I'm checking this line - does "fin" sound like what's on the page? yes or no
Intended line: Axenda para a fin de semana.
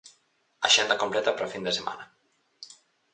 yes